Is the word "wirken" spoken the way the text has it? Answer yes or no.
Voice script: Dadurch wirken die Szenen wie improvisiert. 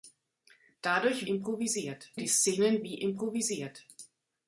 no